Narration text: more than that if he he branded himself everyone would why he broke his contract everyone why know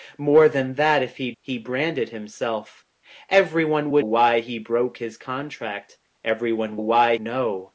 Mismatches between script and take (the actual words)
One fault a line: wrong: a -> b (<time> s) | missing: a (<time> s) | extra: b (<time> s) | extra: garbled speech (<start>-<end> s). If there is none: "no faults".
no faults